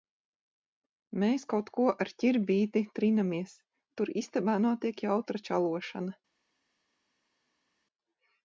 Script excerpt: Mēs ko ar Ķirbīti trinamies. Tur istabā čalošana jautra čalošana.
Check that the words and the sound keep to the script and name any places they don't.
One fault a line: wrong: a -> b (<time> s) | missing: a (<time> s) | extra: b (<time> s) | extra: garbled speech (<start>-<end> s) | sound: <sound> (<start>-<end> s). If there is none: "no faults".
extra: kaut (1.5 s)
wrong: čalošana -> notiek (4.7 s)